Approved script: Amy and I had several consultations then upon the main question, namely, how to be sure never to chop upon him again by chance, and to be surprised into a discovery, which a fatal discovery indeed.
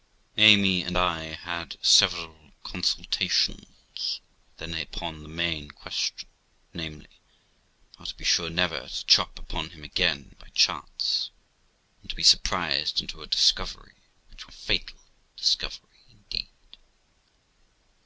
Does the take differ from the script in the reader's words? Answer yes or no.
no